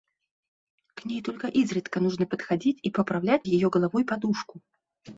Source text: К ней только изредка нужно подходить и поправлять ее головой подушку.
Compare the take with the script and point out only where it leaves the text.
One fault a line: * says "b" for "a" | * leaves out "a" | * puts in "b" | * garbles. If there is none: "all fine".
all fine